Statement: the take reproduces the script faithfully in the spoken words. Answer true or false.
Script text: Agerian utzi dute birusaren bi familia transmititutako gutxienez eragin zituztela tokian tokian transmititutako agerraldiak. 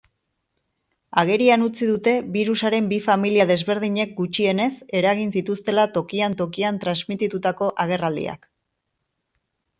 false